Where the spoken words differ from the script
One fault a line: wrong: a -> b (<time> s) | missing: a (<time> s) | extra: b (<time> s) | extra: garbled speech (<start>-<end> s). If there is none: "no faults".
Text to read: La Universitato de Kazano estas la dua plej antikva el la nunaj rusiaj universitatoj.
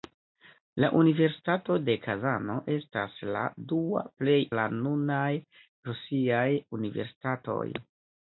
missing: antikva el (4.4 s)